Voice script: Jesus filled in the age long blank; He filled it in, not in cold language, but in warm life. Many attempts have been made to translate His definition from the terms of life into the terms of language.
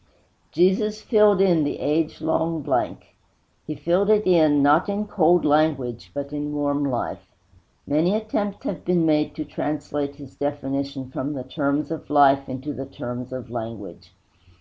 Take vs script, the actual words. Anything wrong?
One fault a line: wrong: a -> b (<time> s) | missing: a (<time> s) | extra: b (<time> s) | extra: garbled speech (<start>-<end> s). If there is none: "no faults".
no faults